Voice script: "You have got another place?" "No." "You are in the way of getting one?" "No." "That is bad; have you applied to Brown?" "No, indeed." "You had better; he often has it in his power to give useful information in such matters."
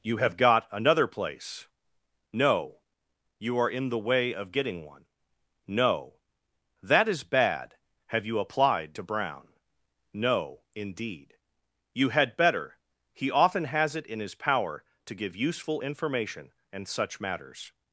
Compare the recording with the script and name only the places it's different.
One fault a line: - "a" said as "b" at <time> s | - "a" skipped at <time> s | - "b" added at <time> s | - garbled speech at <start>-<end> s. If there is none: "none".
- "in" said as "and" at 16.7 s